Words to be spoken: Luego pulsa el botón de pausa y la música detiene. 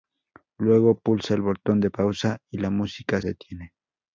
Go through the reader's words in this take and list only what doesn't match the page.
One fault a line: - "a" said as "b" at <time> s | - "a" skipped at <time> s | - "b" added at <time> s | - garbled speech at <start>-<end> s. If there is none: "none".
none